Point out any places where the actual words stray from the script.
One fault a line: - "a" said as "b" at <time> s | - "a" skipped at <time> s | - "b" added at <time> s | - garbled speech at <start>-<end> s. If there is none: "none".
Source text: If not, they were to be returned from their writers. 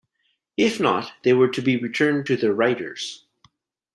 - "from" said as "to" at 2.3 s